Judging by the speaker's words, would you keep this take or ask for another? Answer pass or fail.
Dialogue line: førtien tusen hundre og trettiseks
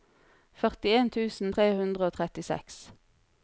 fail